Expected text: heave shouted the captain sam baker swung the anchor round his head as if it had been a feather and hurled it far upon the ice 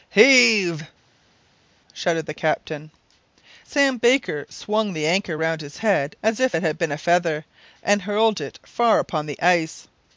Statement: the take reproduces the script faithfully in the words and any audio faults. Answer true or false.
true